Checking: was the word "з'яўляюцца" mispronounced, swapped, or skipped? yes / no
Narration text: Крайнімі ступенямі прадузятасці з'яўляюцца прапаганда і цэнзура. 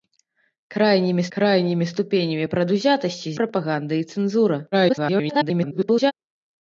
yes